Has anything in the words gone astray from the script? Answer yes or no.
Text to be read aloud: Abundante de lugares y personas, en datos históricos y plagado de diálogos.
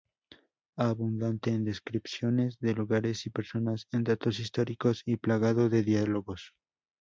yes